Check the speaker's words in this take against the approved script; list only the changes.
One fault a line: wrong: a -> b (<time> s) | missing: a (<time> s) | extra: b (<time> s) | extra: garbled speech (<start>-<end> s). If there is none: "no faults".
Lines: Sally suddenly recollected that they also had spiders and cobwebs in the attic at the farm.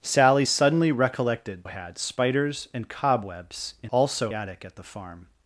missing: that they also (1.6 s)
wrong: the -> also (3.9 s)